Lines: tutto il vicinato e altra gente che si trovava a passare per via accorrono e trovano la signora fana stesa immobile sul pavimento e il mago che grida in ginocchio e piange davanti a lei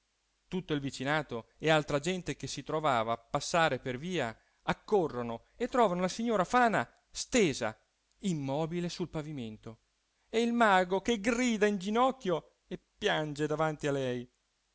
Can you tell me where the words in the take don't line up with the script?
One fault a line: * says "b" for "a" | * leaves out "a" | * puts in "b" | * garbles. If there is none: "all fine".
all fine